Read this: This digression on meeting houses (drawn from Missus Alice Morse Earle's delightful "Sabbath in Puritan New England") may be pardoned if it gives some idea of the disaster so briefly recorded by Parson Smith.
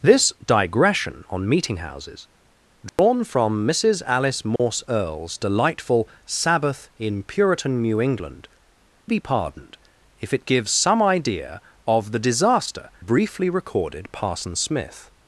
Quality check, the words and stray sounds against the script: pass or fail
fail